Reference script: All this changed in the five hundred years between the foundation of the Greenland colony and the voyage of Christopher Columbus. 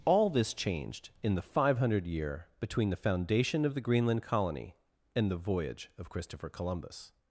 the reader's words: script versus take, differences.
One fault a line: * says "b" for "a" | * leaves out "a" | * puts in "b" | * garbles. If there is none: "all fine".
* says "year" for "years"